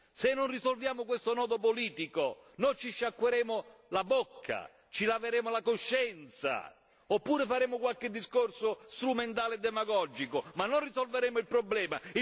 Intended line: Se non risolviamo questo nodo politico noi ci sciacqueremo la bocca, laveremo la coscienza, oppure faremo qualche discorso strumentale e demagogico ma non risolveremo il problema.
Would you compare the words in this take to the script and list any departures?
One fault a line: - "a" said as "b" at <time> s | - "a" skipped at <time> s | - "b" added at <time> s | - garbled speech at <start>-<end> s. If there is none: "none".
- "ci" added at 4.9 s